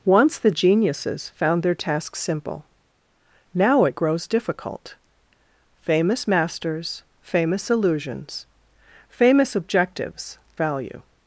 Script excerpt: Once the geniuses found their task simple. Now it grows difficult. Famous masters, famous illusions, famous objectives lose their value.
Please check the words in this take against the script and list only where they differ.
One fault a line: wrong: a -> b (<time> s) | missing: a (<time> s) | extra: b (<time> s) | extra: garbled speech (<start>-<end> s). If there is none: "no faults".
missing: lose their (10.4 s)